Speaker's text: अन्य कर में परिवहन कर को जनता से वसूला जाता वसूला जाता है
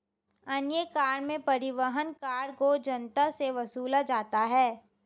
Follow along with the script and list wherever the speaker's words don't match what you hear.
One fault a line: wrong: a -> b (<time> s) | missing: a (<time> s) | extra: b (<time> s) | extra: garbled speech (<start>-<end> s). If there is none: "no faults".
missing: वसूला जाता (4.4 s)